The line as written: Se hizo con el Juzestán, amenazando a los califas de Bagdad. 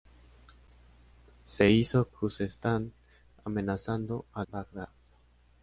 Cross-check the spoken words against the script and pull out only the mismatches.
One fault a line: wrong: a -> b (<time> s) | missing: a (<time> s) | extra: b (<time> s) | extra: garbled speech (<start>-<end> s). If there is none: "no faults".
missing: con el (2.1 s)
missing: los califas de (4.4 s)